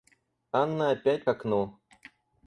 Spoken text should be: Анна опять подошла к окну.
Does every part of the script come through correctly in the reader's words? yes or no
no